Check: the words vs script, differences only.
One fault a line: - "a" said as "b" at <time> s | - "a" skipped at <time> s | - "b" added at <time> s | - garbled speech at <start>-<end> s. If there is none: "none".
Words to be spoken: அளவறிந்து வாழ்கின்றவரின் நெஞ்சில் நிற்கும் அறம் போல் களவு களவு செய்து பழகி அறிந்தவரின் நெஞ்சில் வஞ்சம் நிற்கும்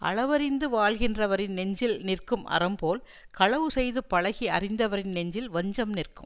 - "களவு" skipped at 3.7 s